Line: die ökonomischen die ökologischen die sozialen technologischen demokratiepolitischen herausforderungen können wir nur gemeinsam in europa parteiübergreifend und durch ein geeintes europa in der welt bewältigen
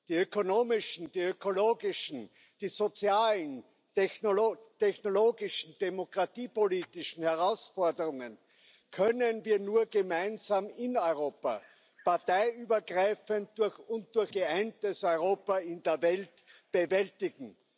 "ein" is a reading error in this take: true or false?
true